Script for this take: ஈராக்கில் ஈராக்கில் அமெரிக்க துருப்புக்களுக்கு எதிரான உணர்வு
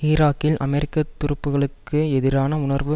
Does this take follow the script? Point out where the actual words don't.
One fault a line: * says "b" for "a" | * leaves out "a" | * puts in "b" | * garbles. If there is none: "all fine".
* leaves out "ஈராக்கில்"